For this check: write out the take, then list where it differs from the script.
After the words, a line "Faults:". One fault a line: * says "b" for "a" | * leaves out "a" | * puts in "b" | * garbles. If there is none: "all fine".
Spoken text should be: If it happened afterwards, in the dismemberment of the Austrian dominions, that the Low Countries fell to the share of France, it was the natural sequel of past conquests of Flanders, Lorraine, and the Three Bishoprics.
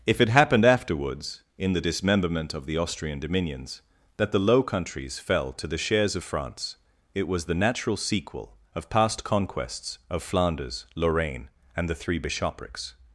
If it happened afterwards, in the dismemberment of the Austrian dominions, that the Low Countries fell to the shares of France, it was the natural sequel of past conquests of Flanders, Lorraine, and the Three Bishoprics.
Faults:
* says "shares" for "share"